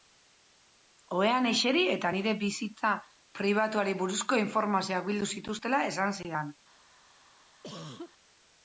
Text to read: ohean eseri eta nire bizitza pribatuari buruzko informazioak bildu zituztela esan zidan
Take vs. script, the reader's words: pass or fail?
pass